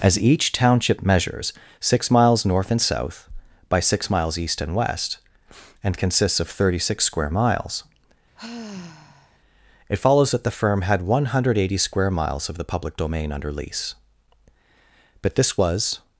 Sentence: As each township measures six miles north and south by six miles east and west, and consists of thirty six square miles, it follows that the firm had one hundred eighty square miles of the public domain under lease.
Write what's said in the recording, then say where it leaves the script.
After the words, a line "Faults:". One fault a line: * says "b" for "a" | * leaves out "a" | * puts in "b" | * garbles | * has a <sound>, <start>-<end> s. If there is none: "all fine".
As each township measures six miles north and south by six miles east and west, and consists of thirty six square miles, it follows that the firm had one hundred eighty square miles of the public domain under lease. But this was
Faults:
* has a sigh, 8.4-9.4 s
* puts in "But this was"